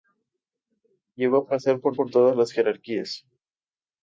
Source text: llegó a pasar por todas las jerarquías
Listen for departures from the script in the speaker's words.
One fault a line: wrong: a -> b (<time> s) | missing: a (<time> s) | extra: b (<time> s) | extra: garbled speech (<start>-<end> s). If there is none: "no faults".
extra: por (1.9 s)